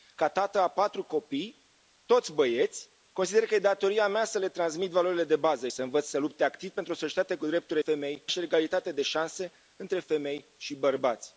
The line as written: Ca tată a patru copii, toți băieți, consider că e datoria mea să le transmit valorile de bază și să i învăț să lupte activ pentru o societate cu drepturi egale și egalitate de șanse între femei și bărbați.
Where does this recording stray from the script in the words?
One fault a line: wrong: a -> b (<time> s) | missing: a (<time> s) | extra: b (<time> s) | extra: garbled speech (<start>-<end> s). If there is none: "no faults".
wrong: egale -> femei (7.8 s)